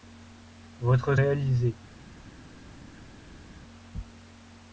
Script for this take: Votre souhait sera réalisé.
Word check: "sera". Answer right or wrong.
wrong